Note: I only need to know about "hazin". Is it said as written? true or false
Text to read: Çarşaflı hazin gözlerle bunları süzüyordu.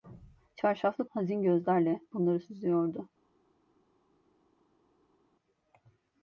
true